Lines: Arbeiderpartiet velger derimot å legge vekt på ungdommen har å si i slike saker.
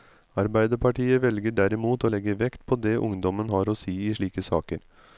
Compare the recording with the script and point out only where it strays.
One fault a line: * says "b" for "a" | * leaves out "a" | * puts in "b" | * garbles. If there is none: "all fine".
* puts in "det"